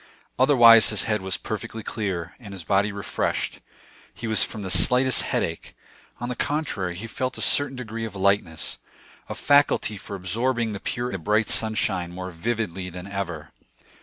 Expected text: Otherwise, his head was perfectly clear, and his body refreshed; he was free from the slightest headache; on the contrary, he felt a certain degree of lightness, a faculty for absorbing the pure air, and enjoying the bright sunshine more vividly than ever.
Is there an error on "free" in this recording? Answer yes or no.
yes